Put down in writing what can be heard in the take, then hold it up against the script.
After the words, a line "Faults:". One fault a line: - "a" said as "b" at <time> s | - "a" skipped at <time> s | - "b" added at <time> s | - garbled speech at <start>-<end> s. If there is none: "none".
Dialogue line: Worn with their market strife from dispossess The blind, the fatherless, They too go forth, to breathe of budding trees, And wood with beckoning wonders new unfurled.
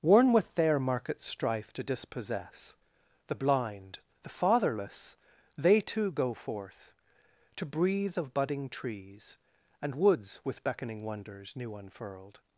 Worn with their market strife to dispossess The blind, the fatherless, They too go forth, to breathe of budding trees, And woods with beckoning wonders new unfurled.
Faults:
- "from" said as "to" at 1.7 s
- "wood" said as "woods" at 9.9 s